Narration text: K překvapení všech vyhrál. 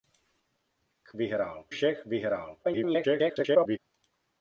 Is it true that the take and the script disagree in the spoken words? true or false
true